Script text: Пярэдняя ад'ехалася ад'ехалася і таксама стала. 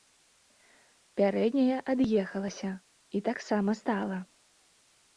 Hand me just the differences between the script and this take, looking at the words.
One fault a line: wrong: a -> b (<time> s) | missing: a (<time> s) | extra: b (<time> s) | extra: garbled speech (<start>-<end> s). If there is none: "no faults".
missing: ад'ехалася (2.7 s)